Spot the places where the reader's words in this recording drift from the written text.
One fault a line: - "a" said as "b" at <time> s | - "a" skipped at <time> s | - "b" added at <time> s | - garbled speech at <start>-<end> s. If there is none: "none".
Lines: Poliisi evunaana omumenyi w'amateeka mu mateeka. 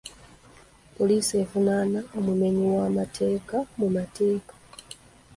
none